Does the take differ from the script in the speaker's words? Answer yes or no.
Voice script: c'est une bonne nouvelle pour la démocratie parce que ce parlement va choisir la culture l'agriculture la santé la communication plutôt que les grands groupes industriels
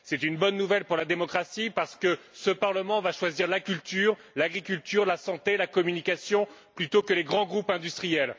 no